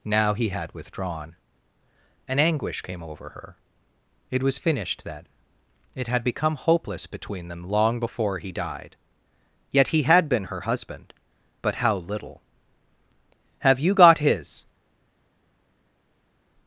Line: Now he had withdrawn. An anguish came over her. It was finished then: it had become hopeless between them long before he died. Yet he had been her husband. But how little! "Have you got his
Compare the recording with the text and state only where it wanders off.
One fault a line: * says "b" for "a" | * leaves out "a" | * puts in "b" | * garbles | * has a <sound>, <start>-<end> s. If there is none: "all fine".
all fine